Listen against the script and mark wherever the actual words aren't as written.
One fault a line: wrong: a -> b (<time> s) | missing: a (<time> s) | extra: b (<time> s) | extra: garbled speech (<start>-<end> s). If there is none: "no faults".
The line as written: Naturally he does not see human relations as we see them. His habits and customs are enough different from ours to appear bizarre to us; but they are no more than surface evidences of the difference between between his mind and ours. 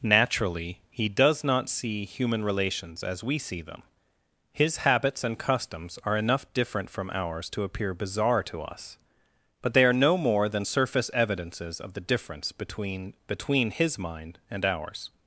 no faults